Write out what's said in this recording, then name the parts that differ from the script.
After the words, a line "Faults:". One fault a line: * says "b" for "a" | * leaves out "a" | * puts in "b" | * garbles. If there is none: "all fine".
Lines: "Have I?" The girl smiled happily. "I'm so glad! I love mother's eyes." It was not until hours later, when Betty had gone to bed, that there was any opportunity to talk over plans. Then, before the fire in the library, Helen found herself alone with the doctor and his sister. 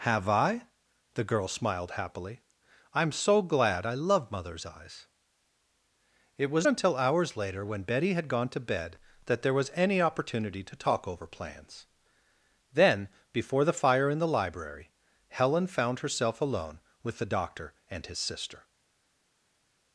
"Have I?" The girl smiled happily. "I'm so glad! I love mother's eyes." It was until hours later, when Betty had gone to bed, that there was any opportunity to talk over plans. Then, before the fire in the library, Helen found herself alone with the doctor and his sister.
Faults:
* leaves out "not"